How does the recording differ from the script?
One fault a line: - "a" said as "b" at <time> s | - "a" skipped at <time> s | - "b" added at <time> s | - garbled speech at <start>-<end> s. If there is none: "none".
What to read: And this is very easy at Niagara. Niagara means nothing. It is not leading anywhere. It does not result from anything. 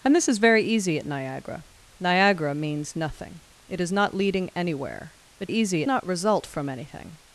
- "does" said as "easy" at 5.5 s